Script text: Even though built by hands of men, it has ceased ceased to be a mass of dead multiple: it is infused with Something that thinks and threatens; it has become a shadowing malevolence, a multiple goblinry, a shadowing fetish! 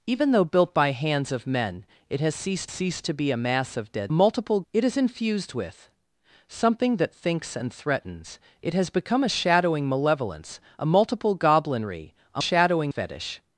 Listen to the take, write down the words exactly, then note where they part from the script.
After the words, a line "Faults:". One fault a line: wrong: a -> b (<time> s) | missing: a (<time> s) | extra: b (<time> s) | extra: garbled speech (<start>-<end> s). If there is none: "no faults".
Even though built by hands of men, it has ceased ceased to be a mass of dead multiple: it is infused with Something that thinks and threatens; it has become a shadowing malevolence, a multiple goblinry, a shadowing fetish!
Faults:
no faults